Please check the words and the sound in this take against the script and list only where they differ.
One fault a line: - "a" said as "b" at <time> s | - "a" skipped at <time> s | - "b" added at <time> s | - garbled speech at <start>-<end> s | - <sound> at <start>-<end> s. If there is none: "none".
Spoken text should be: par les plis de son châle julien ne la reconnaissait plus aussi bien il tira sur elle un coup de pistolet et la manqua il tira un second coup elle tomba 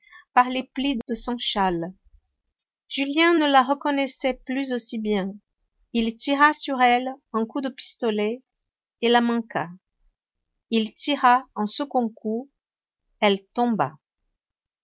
none